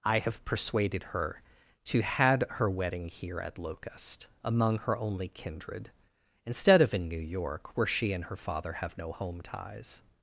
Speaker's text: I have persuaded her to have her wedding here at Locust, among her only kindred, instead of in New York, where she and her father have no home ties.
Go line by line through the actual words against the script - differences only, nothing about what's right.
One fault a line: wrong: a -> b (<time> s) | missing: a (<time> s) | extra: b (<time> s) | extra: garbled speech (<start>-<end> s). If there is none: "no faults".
wrong: have -> had (2.0 s)